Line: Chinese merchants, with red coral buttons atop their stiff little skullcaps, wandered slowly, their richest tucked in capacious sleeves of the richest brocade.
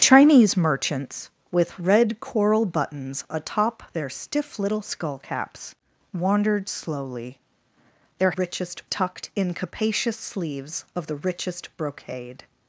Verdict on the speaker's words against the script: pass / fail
pass